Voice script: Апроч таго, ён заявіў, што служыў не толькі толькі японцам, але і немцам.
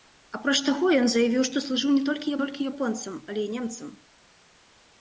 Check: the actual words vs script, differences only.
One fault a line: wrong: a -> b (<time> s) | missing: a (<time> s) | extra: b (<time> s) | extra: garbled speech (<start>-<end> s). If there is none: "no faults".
no faults